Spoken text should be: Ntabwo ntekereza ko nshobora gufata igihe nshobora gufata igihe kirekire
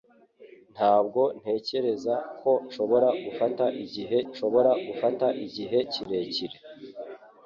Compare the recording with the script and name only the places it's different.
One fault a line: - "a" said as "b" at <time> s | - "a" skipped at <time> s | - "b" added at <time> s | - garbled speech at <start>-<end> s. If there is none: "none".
none